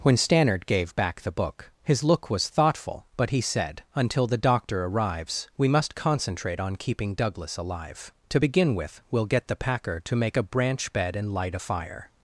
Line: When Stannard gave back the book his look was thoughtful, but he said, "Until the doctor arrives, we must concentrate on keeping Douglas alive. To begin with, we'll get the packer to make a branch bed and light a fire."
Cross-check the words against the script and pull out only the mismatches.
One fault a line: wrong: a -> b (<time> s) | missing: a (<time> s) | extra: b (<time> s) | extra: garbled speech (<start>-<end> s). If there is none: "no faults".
no faults